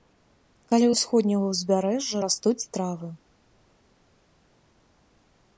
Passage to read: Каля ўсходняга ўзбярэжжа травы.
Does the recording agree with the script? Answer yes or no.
no